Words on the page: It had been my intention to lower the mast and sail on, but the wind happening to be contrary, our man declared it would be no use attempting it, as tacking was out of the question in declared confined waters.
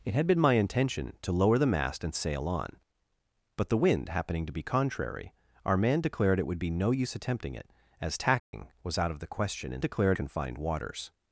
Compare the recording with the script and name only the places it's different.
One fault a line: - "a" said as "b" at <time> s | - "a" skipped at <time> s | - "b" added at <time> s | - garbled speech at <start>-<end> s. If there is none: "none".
none